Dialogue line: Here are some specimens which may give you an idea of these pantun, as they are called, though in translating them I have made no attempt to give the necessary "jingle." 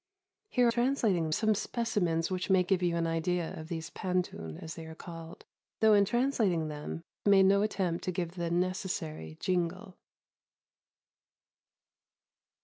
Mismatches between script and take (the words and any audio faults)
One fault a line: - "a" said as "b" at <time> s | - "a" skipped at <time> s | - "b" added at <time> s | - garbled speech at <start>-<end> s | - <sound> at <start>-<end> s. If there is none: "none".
- "are" said as "translating" at 0.7 s
- "I have" skipped at 7.0 s